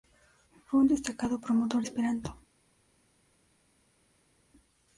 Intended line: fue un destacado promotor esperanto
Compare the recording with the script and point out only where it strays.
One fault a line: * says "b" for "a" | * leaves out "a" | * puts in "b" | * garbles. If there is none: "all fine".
all fine